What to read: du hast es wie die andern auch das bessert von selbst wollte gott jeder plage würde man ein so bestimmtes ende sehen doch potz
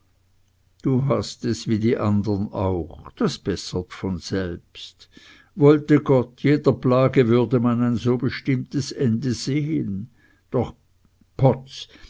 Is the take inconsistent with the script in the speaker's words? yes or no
no